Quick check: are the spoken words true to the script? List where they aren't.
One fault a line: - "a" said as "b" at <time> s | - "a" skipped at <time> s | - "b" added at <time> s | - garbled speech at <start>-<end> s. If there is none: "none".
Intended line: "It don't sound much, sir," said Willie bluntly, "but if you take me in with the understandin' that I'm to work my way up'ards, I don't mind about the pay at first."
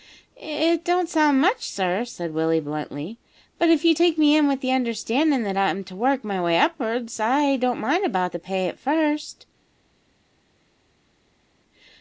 none